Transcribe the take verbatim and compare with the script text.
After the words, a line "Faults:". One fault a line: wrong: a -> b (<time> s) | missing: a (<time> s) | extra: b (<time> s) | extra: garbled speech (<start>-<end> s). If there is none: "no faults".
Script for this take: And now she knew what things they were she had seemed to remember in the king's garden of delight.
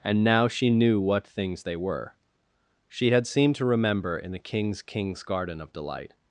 And now she knew what things they were she had seemed to remember in the king's king's garden of delight.
Faults:
extra: king's (4.8 s)